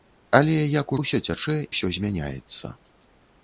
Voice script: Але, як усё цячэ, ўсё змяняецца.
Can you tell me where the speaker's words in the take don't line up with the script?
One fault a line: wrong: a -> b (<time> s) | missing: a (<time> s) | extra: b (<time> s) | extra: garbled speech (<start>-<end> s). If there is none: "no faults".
no faults